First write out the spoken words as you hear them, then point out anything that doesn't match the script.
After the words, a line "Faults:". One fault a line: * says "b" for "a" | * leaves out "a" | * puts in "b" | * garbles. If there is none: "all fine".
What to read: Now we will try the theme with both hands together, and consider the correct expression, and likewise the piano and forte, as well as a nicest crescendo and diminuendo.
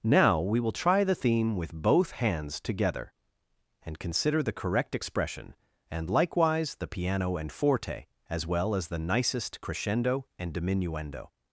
Now we will try the theme with both hands together, and consider the correct expression, and likewise the piano and forte, as well as the nicest crescendo and diminuendo.
Faults:
* says "the" for "a"